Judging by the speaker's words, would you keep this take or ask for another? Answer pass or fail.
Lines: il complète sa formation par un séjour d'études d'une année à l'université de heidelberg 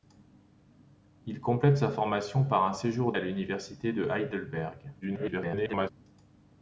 fail